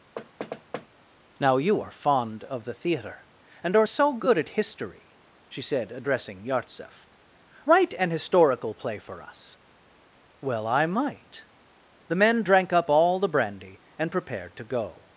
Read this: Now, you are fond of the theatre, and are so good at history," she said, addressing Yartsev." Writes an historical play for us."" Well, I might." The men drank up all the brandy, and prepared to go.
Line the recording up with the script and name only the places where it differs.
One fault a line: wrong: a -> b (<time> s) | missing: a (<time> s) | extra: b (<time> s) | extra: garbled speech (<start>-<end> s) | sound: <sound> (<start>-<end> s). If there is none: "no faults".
sound: thud (0.2-0.9 s)
wrong: Writes -> Write (7.7 s)